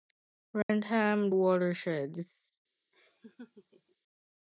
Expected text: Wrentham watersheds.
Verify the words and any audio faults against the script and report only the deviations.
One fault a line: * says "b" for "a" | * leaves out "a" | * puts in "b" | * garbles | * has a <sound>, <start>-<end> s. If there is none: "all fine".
* has a dropout, 0.6-0.7 s
* has a laugh, 2.9-4.0 s